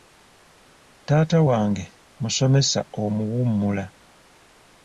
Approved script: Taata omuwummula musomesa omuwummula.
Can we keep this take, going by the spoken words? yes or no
no